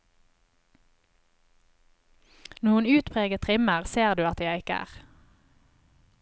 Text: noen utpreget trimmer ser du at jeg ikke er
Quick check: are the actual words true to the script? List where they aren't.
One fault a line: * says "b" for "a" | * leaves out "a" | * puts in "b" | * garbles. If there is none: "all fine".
all fine